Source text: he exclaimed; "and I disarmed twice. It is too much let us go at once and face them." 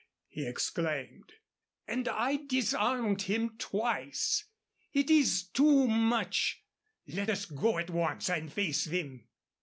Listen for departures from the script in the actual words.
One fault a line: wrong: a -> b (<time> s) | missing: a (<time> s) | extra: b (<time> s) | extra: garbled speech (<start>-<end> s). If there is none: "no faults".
extra: him (3.2 s)